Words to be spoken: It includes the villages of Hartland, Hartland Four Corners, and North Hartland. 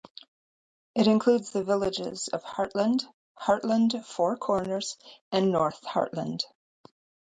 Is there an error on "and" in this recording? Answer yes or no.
no